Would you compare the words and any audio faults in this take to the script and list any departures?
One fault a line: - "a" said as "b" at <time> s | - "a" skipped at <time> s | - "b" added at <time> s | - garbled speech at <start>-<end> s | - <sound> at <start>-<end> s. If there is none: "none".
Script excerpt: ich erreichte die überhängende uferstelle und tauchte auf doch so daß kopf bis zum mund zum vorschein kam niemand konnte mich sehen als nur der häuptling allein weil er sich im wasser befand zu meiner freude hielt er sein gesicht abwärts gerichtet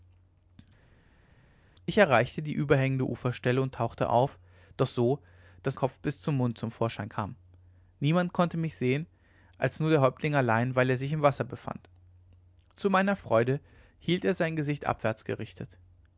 none